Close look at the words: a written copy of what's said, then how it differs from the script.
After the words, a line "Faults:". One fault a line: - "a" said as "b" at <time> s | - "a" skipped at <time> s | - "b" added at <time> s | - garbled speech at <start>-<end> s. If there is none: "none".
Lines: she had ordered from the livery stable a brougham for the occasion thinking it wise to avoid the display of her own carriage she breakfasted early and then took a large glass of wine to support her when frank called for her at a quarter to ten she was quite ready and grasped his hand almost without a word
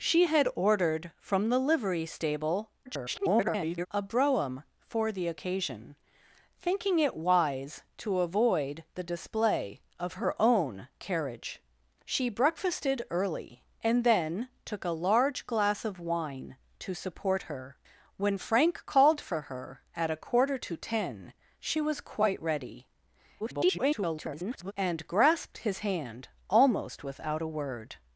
she had ordered from the livery stable [garbled] a brougham for the occasion thinking it wise to avoid the display of her own carriage she breakfasted early and then took a large glass of wine to support her when frank called for her at a quarter to ten she was quite ready [garbled] and grasped his hand almost without a word
Faults:
- garbled speech at 2.9-3.9 s
- garbled speech at 23.4-24.7 s